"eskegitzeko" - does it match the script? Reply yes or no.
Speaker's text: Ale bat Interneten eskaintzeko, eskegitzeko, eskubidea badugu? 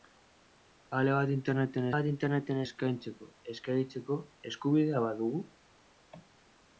yes